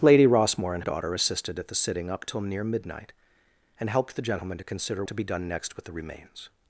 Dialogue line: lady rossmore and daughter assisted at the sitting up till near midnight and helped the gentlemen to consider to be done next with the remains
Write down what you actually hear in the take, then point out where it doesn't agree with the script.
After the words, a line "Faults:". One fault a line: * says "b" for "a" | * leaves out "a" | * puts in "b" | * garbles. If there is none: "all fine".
lady rossmore and daughter assisted at the sitting up till near midnight and helped the gentlemen to consider to be done next with the remains
Faults:
all fine